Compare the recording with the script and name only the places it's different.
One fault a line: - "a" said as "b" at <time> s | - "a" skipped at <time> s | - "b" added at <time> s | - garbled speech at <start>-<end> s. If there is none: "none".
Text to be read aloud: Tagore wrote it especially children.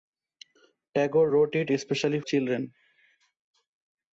none